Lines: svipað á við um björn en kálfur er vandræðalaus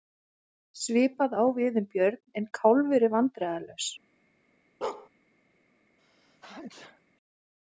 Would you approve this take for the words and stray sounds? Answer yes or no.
no